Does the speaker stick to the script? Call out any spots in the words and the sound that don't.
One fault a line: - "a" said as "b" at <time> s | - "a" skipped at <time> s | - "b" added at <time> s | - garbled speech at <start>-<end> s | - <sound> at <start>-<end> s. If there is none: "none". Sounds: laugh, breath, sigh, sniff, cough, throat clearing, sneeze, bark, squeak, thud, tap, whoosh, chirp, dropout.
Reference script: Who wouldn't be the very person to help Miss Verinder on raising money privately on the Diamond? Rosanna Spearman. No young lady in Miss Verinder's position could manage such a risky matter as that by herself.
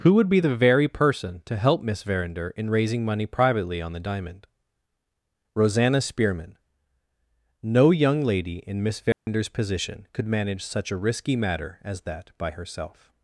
- "wouldn't" said as "would" at 0.1 s
- "on" said as "in" at 2.6 s
- dropout at 9.1-9.3 s